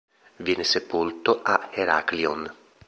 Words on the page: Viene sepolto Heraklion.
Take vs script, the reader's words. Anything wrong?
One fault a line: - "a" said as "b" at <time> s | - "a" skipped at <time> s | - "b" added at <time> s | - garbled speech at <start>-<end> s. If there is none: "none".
- "a" added at 1.4 s